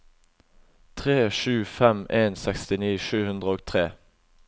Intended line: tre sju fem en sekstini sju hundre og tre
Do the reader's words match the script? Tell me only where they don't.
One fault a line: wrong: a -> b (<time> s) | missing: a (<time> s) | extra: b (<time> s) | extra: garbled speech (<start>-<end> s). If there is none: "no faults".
no faults